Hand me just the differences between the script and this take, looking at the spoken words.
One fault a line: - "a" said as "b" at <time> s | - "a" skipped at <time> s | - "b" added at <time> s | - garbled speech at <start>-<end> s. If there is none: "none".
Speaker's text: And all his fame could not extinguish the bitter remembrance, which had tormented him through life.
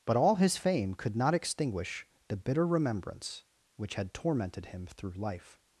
- "And" said as "But" at 0.1 s